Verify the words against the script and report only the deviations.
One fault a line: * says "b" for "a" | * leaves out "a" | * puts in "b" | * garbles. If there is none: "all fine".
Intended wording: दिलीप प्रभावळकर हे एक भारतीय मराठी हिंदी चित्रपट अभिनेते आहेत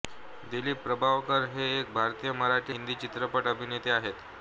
all fine